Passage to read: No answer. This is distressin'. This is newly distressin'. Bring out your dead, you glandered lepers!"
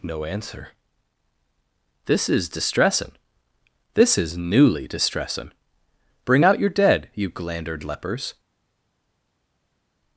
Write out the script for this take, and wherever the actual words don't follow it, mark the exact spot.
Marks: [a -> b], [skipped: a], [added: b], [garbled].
No answer. This is distressin'. This is newly distressin'. Bring out your dead, you glandered lepers!"